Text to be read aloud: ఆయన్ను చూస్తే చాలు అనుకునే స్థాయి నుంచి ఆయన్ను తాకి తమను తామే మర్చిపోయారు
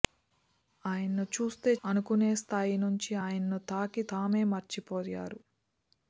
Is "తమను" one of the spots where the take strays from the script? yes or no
yes